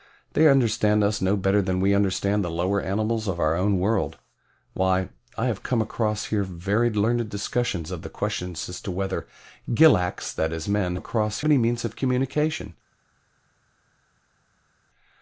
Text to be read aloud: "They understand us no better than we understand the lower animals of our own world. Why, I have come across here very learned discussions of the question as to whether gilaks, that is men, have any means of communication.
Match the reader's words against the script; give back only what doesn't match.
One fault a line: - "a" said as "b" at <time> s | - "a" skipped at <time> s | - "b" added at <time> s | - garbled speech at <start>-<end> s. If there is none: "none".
- "have" said as "across" at 10.9 s